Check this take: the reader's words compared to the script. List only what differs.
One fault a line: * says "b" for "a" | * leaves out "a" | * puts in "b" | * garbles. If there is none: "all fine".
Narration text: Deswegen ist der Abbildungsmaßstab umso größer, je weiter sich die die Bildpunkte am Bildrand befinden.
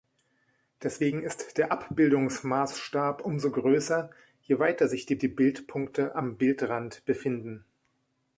all fine